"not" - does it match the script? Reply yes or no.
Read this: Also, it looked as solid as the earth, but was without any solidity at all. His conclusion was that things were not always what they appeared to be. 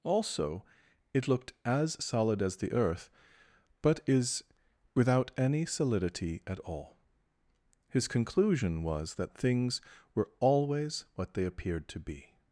no